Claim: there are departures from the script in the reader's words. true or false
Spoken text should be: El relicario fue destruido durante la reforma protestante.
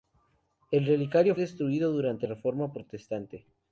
true